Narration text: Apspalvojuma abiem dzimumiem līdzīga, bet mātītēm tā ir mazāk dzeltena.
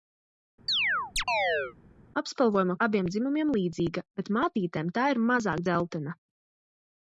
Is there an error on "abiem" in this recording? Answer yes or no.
no